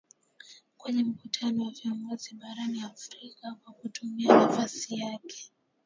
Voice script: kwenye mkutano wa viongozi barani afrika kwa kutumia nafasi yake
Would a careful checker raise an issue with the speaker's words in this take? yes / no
no